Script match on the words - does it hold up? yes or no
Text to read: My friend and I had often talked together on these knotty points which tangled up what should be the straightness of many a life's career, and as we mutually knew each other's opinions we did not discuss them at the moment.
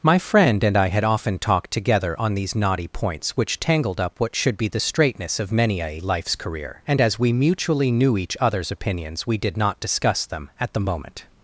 yes